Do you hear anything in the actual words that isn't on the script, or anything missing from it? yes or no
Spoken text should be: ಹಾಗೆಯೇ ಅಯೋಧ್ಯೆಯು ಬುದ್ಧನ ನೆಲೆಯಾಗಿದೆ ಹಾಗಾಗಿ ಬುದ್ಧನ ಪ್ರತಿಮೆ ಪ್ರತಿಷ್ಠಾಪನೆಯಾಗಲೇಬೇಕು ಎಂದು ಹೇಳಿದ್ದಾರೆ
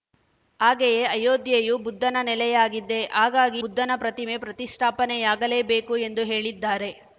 no